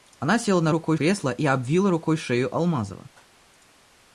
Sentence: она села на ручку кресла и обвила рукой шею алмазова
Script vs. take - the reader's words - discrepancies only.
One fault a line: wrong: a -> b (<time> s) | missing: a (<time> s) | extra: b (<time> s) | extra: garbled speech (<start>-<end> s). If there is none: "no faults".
wrong: ручку -> рукой (0.7 s)